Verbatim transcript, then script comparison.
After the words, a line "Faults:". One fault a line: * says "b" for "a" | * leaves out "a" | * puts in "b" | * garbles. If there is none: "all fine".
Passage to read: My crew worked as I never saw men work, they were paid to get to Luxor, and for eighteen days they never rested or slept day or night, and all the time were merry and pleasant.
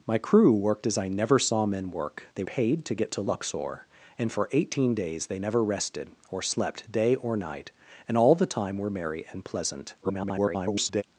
My crew worked as I never saw men work, they paid to get to Luxor, and for eighteen days they never rested or slept day or night, and all the time were merry and pleasant. [garbled]
Faults:
* leaves out "were"
* garbles